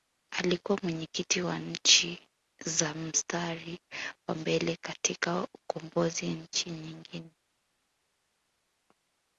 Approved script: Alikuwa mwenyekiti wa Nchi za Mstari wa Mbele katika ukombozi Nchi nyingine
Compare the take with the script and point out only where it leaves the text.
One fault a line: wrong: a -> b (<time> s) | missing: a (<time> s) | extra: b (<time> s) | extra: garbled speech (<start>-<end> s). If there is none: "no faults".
no faults